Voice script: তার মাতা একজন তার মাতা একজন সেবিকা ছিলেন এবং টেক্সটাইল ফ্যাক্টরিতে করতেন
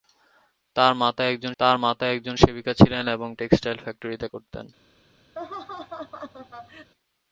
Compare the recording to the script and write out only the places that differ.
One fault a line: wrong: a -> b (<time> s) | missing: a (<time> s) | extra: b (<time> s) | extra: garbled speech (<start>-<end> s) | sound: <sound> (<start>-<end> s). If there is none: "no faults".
sound: laugh (5.4-6.9 s)